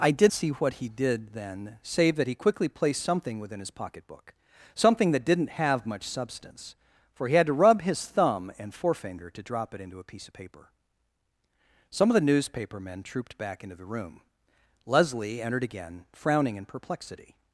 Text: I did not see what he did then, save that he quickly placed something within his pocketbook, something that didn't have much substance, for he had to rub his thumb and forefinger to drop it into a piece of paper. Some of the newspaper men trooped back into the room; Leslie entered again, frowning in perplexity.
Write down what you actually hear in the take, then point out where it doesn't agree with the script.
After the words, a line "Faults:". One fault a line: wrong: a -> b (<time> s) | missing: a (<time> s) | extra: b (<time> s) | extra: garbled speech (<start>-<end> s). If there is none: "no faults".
I did see what he did then, save that he quickly placed something within his pocketbook, something that didn't have much substance, for he had to rub his thumb and forefinger to drop it into a piece of paper. Some of the newspaper men trooped back into the room; Leslie entered again, frowning in perplexity.
Faults:
missing: not (0.3 s)